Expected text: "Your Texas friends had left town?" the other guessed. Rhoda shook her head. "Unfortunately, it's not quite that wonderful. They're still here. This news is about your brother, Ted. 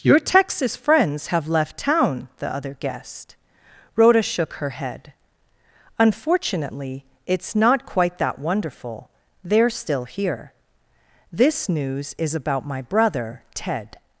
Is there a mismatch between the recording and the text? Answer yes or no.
yes